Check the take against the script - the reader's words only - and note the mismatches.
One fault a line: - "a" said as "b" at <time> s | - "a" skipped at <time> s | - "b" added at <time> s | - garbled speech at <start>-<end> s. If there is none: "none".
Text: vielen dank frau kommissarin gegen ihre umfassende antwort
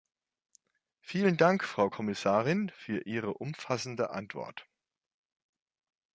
- "gegen" said as "für" at 2.7 s